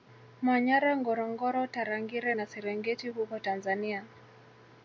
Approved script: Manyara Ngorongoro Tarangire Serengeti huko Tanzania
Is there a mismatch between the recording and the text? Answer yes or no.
yes